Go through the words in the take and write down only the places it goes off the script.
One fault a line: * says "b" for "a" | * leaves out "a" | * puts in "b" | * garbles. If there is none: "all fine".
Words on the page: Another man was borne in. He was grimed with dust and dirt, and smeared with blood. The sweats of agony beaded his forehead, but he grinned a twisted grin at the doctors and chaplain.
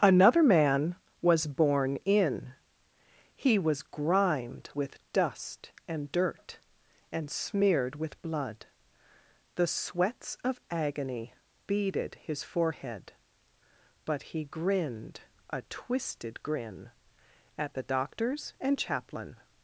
all fine